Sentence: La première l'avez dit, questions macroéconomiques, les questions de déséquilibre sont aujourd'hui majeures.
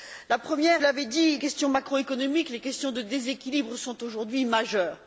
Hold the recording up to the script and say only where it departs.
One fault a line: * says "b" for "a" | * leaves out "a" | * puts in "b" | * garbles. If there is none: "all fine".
all fine